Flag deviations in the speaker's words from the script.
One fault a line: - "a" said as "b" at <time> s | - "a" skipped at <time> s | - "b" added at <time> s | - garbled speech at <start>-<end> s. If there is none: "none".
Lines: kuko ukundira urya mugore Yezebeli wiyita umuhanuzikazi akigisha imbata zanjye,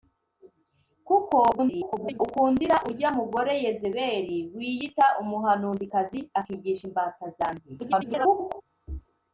- garbled speech at 1.5-2.2 s
- garbled speech at 7.8-8.6 s